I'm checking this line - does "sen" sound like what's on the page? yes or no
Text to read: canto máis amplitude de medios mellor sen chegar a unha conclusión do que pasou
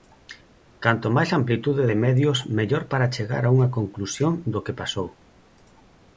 no